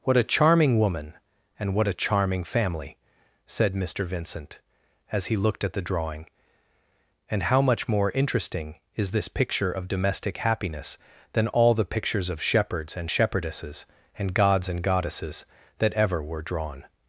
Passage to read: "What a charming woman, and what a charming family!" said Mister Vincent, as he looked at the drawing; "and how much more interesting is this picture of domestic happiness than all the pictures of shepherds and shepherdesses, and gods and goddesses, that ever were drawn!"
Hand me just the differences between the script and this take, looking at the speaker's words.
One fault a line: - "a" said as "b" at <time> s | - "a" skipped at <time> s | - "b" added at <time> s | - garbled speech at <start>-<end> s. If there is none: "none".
none